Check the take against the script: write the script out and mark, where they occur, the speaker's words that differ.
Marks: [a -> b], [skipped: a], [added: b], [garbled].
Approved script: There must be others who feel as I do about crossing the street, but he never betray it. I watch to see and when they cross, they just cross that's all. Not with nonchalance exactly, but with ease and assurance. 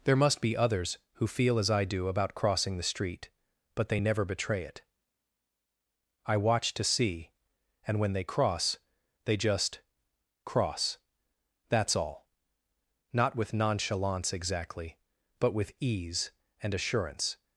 There must be others who feel as I do about crossing the street, but [he -> they] never betray it. I watch to see and when they cross, they just cross that's all. Not with nonchalance exactly, but with ease and assurance.